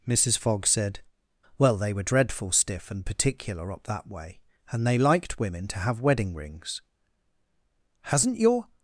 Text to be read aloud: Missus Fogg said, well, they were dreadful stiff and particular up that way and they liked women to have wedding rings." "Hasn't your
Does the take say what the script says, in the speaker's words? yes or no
yes